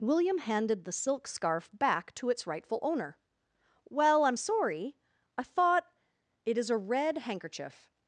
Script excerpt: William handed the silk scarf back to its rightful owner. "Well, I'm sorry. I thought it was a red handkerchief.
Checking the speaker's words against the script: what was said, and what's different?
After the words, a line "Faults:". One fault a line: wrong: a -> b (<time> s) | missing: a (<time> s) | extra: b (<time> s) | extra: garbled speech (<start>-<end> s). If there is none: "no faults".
William handed the silk scarf back to its rightful owner. "Well, I'm sorry. I thought it is a red handkerchief.
Faults:
wrong: was -> is (6.6 s)